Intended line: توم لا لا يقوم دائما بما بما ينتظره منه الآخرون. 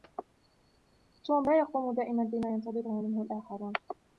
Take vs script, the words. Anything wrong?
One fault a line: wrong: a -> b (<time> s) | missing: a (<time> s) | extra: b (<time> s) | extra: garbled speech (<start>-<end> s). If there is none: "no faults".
missing: لا (1.6 s)
missing: بما (2.5 s)